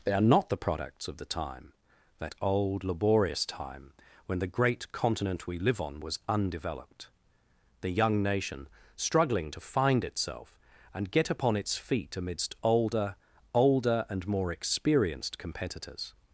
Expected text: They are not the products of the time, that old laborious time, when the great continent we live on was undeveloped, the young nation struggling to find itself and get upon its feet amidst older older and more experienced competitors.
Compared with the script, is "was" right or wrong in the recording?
right